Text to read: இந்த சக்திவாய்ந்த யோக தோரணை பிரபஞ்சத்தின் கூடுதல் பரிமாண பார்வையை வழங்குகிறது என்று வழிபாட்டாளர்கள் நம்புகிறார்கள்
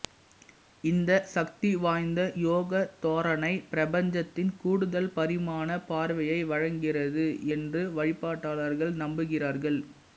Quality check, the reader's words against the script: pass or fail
pass